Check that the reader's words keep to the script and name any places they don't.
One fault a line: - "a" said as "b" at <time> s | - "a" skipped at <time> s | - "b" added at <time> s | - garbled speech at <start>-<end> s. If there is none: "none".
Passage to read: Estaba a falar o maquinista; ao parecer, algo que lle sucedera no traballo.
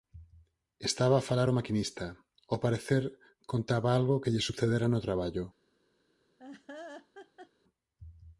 - "contaba" added at 3.5 s